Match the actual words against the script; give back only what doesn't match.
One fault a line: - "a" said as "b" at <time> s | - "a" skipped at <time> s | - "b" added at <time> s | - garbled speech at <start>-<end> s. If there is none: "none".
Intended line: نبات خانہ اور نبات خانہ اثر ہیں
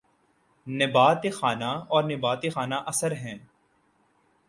none